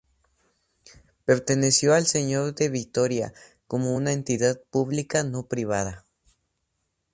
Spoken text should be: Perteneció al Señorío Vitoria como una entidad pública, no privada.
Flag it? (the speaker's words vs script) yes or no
yes